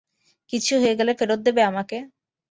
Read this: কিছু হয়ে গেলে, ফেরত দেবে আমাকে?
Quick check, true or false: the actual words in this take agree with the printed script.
true